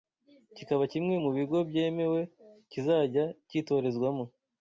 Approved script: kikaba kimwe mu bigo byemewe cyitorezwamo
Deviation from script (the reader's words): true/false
true